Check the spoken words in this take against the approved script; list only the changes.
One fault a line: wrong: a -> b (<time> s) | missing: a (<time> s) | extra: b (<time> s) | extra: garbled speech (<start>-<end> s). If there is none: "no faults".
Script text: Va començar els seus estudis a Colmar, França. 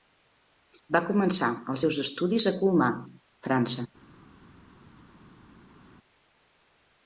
no faults